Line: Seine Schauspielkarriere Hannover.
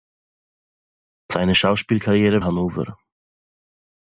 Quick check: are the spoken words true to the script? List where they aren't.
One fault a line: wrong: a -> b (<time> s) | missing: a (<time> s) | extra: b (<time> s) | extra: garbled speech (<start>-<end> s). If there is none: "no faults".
no faults